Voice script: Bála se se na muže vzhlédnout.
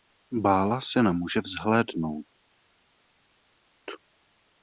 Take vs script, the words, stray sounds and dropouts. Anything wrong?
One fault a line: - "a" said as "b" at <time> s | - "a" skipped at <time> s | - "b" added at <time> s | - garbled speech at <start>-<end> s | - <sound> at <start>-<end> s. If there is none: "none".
- "se" skipped at 1.0 s